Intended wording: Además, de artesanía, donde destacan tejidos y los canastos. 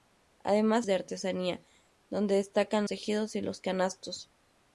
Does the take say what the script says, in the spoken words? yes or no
yes